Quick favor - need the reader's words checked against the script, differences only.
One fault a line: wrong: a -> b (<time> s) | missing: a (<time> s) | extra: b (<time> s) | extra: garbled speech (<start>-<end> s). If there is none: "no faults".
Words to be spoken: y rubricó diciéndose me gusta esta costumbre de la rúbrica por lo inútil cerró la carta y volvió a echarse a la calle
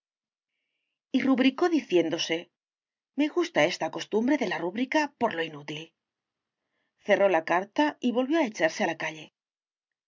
no faults